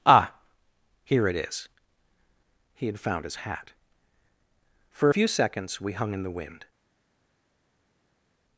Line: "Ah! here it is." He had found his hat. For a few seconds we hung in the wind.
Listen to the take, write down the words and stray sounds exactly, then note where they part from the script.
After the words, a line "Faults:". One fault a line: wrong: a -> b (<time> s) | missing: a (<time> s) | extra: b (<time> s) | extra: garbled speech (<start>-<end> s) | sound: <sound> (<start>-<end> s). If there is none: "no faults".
"Ah! here it is." He had found his hat. For few seconds we hung in the wind.
Faults:
missing: a (5.1 s)